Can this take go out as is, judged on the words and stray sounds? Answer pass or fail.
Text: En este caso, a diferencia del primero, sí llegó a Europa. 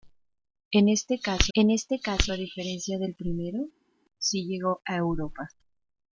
fail